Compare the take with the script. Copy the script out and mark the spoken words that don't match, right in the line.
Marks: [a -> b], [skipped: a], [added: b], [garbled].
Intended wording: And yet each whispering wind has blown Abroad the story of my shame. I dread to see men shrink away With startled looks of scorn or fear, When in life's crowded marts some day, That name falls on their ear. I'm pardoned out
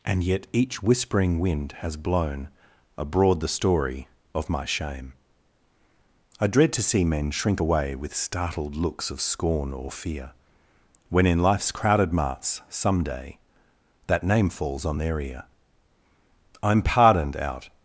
And yet each whispering wind has blown Abroad the story of my shame. I dread to see men shrink away With startled looks of scorn or fear, When in life's crowded marts some day, That name falls on their ear. I'm pardoned out